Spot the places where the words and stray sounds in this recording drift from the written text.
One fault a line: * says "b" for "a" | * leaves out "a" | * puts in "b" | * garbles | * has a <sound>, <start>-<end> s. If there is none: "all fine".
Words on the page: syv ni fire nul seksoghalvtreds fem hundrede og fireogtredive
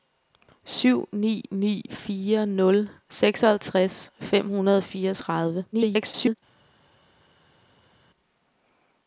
* puts in "ni"
* garbles